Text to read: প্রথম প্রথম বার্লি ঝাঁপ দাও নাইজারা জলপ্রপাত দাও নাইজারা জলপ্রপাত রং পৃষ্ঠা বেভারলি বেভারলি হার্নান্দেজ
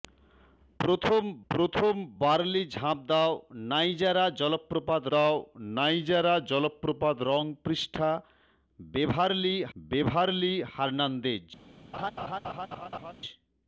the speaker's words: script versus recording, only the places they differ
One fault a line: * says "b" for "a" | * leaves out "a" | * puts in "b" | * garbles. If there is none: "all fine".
all fine